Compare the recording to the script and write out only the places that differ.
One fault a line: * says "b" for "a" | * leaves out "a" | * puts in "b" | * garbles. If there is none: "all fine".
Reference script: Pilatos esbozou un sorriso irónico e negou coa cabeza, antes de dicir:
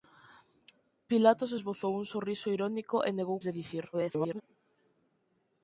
* leaves out "coa cabeza antes"
* garbles